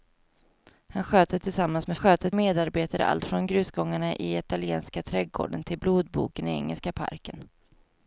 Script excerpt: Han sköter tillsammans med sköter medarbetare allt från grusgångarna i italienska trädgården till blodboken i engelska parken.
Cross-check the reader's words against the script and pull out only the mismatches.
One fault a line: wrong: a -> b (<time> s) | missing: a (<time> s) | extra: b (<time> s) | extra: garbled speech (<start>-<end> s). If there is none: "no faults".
no faults